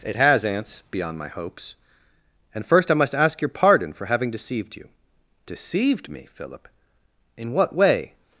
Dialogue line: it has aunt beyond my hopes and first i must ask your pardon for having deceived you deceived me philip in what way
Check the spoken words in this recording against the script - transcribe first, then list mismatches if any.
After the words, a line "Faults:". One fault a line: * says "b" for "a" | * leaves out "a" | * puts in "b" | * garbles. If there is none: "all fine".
it has aunts beyond my hopes and first i must ask your pardon for having deceived you deceived me philip in what way
Faults:
* says "aunts" for "aunt"